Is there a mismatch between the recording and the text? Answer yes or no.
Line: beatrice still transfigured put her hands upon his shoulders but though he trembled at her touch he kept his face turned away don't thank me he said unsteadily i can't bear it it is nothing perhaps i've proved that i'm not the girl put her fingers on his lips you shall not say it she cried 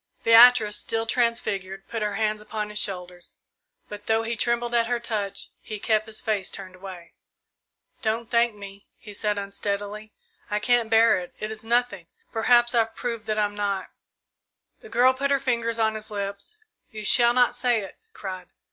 yes